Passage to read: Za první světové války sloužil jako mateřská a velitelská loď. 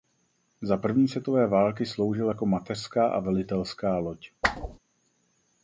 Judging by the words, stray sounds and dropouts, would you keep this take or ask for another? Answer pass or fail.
fail